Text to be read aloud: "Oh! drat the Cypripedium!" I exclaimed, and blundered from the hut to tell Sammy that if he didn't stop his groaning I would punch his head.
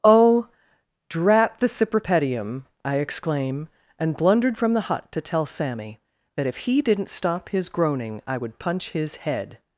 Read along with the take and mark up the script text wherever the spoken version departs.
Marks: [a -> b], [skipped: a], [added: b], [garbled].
"Oh! drat the Cypripedium!" I [exclaimed, -> exclaim] and blundered from the hut to tell Sammy that if he didn't stop his groaning I would punch his head.